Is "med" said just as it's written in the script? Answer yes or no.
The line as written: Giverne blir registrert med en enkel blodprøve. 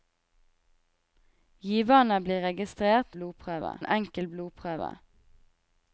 no